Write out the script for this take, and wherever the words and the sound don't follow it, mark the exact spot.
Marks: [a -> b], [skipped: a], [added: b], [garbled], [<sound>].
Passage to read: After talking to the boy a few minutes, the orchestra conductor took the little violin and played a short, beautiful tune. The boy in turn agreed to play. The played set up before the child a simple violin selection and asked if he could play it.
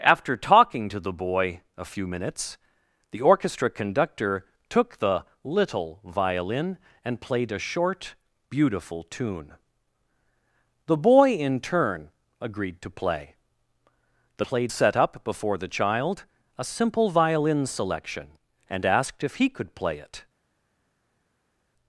After talking to the boy a few minutes, the orchestra conductor took the little violin and played a short, beautiful tune. The boy in turn agreed to play. The played set up before the child a simple violin selection and asked if he could play it.